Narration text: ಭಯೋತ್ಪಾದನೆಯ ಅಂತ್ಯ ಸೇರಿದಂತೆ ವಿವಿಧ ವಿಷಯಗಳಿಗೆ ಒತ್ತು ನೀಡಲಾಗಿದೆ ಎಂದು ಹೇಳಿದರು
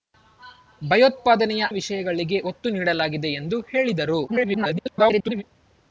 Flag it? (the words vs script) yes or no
yes